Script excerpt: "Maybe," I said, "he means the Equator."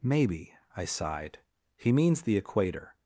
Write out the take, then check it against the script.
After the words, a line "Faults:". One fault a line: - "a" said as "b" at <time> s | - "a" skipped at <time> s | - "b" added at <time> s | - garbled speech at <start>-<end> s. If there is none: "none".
"Maybe," I sighed, "he means the Equator."
Faults:
- "said" said as "sighed" at 0.8 s